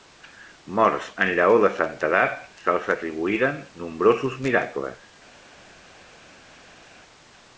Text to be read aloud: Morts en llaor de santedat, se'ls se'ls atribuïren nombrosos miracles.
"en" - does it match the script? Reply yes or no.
yes